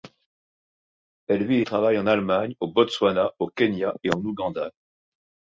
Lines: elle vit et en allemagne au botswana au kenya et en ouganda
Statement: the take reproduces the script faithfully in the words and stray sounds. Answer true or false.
false